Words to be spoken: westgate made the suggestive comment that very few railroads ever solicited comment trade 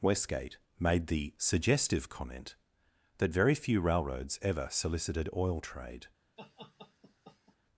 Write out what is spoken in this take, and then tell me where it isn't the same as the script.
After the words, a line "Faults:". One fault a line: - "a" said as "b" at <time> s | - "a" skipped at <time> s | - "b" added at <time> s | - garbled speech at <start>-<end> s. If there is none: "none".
westgate made the suggestive comment that very few railroads ever solicited oil trade
Faults:
- "comment" said as "oil" at 5.3 s